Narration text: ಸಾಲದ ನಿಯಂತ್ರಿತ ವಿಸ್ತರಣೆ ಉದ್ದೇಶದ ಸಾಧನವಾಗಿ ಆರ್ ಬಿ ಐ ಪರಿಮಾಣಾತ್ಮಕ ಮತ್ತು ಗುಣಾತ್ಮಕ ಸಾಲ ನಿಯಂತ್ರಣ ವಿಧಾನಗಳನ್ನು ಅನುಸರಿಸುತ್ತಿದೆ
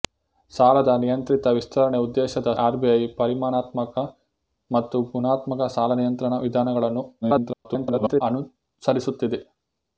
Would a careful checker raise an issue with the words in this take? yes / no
yes